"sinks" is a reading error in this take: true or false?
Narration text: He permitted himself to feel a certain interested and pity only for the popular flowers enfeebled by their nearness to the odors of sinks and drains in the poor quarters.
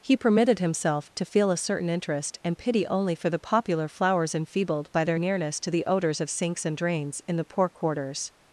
false